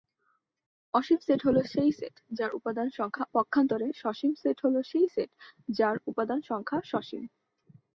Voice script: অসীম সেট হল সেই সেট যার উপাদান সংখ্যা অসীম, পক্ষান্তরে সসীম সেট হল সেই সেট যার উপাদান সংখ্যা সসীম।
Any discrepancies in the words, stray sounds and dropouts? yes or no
yes